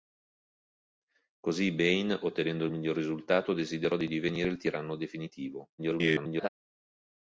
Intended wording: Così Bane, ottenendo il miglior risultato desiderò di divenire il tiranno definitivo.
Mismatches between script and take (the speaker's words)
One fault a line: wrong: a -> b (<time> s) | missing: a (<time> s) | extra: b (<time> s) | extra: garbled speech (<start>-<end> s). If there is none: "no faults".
extra: garbled speech (5.8-6.5 s)